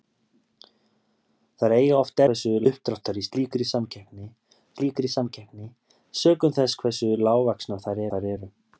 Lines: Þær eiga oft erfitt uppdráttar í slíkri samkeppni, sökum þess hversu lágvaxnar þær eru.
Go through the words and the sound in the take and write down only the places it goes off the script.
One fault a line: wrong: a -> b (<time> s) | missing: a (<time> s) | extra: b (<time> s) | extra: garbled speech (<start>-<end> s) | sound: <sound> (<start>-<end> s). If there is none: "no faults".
wrong: erfitt -> hversu (2.3 s)
extra: slíkri samkeppni (4.8 s)
extra: þær (8.1 s)